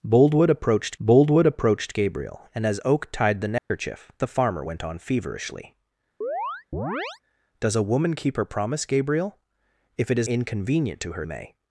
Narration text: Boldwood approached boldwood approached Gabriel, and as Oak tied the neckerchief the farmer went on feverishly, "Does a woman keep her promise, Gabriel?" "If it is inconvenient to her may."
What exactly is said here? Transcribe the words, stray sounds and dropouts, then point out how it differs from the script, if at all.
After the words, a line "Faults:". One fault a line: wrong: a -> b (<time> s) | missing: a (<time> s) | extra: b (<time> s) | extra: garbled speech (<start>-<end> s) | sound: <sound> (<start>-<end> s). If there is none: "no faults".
Boldwood approached boldwood approached Gabriel, and as Oak tied the neckerchief the farmer went on feverishly, "Does a woman keep her promise, Gabriel?" "If it is inconvenient to her may."
Faults:
sound: dropout (3.6-3.7 s)
sound: chirp (6.2-7.2 s)